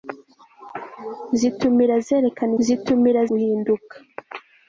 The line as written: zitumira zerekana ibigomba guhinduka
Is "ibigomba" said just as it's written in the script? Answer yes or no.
no